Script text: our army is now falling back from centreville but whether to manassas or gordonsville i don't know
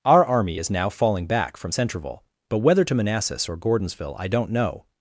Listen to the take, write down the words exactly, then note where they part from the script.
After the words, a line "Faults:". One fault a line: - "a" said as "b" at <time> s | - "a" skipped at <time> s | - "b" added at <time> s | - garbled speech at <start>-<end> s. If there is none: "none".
our army is now falling back from centreville but whether to manassas or gordonsville i don't know
Faults:
none